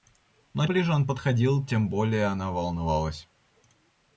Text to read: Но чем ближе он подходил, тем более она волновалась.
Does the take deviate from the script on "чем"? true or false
true